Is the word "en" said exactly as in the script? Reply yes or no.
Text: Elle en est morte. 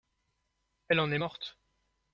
yes